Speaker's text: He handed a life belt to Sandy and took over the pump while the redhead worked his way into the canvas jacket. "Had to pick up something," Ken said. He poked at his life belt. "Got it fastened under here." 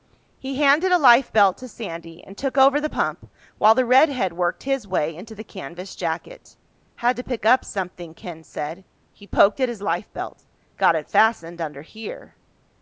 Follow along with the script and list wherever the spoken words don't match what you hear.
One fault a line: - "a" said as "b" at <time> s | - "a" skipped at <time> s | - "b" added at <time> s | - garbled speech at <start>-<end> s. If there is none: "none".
none